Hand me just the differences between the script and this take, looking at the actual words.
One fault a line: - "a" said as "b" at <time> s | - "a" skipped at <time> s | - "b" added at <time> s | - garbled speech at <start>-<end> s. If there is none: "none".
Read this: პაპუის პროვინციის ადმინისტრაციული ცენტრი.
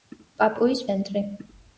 - "პროვინციის ადმინისტრაციული" skipped at 0.8 s